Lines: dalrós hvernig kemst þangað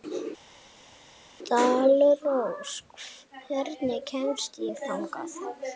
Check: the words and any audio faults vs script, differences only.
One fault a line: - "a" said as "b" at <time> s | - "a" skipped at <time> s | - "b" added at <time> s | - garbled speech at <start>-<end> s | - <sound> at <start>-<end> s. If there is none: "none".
- "ég" added at 4.7 s